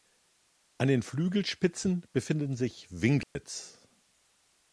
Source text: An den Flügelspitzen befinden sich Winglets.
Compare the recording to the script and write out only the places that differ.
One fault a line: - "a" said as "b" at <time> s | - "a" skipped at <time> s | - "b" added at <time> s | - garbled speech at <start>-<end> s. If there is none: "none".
none